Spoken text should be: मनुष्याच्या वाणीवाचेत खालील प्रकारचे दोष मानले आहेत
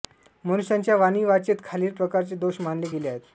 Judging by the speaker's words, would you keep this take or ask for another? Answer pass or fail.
fail